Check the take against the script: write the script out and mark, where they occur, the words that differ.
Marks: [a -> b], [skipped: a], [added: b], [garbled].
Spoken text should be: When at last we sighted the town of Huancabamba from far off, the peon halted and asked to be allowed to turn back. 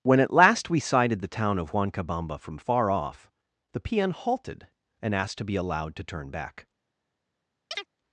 When at last we sighted the town of Huancabamba from far off, the peon halted and asked to be allowed to turn back.